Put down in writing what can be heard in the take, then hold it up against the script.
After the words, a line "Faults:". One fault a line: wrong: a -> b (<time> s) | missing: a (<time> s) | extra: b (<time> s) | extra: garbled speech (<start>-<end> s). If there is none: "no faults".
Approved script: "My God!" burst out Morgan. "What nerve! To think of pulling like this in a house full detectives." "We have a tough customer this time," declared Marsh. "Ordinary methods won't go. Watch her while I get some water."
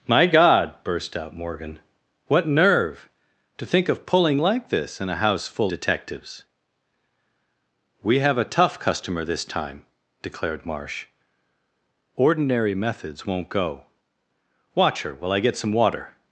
"My God!" burst out Morgan. "What nerve! To think of pulling like this in a house full detectives." "We have a tough customer this time," declared Marsh. "Ordinary methods won't go. Watch her while I get some water."
Faults:
no faults